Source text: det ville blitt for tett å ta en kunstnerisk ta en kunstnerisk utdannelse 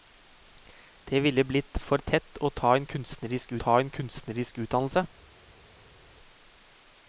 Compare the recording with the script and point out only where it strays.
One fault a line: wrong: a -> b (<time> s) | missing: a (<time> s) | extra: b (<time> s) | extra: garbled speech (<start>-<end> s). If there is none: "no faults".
no faults